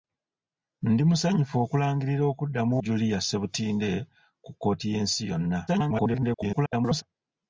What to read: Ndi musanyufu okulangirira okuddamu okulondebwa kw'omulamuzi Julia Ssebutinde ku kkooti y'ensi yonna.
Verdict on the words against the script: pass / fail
fail